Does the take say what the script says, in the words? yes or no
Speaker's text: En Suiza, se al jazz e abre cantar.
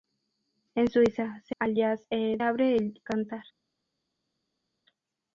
yes